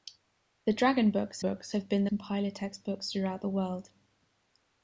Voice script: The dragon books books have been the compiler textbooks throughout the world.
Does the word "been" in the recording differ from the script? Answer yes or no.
no